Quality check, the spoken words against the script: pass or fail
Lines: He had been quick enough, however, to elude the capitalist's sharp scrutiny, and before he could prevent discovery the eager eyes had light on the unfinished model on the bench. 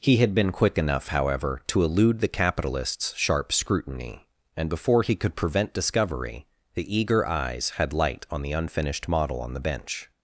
pass